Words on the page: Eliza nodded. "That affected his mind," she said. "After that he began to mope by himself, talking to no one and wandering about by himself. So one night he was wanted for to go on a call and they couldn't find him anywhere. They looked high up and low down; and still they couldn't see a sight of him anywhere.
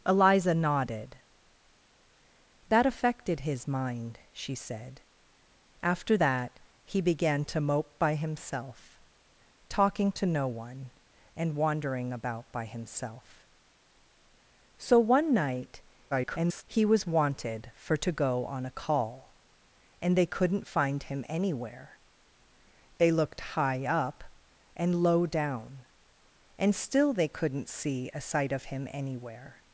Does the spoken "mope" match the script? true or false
true